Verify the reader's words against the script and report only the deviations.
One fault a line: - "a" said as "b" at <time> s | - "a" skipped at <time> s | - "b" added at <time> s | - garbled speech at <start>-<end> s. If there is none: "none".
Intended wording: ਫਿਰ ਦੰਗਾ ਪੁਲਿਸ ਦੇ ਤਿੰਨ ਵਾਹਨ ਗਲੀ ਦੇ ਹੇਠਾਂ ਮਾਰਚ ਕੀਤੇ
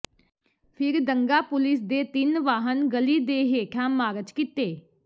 none